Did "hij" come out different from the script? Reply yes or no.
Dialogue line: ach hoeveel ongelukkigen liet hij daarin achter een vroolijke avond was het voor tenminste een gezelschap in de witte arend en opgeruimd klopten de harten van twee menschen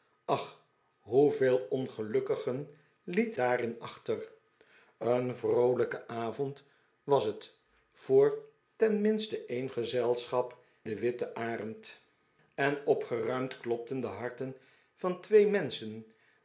yes